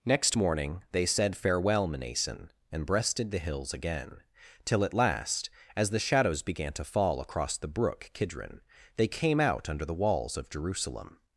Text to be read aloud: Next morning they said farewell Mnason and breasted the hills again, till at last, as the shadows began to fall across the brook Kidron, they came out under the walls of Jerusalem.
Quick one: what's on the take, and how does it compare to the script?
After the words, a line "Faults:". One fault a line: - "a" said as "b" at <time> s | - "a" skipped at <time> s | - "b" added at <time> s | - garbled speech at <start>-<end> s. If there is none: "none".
Next morning they said farewell Mnason and breasted the hills again, till at last, as the shadows began to fall across the brook Kidron, they came out under the walls of Jerusalem.
Faults:
none